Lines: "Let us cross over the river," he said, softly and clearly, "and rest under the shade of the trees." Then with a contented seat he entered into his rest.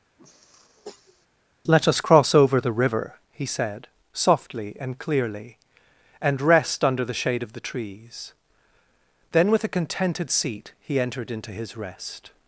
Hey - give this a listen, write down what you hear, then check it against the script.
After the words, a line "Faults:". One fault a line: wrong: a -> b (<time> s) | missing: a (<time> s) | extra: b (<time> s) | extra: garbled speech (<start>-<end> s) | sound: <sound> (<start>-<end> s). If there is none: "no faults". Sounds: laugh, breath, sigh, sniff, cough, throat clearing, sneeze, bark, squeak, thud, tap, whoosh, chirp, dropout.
"Let us cross over the river," he said, softly and clearly, "and rest under the shade of the trees." Then with a contented seat he entered into his rest.
Faults:
sound: sniff (0.2-1.3 s)